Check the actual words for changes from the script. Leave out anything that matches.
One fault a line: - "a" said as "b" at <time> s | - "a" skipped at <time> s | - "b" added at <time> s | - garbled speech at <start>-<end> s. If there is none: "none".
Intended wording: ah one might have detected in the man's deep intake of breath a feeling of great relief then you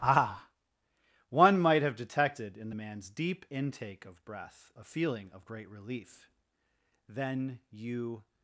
none